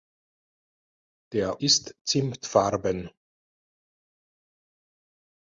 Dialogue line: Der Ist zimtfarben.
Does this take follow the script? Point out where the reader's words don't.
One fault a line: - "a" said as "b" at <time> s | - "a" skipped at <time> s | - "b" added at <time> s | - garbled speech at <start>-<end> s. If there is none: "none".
none